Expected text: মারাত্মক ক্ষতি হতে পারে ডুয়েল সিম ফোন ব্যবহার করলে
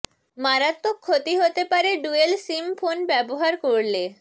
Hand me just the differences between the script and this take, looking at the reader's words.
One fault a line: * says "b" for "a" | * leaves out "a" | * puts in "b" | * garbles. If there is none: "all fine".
all fine